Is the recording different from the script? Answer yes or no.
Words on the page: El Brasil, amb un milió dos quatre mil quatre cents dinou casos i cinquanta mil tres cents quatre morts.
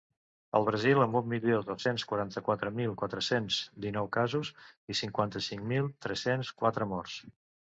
yes